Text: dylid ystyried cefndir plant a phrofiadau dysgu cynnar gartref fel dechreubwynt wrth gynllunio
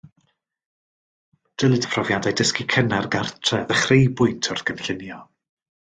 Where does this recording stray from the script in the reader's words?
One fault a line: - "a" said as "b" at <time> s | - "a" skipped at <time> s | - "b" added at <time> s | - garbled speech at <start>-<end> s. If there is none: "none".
- "ystyried cefndir plant" skipped at 1.9 s
- "fel" skipped at 3.7 s